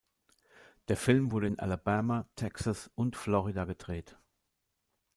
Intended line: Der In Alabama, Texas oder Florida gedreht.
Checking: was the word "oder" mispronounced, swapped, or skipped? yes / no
yes